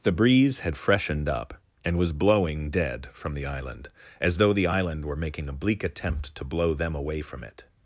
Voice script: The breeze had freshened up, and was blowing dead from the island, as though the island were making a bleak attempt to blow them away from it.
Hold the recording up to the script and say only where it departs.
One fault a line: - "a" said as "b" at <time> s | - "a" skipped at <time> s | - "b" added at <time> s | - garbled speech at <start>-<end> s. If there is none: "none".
none